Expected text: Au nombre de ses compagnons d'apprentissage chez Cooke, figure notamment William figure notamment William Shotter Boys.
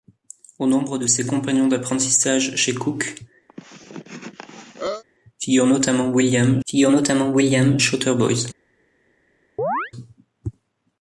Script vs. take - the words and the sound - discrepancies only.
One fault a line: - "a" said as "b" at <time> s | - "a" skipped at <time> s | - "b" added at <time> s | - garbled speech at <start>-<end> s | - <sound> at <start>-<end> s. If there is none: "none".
- cough at 3.5-5.0 s
- chirp at 9.6-9.9 s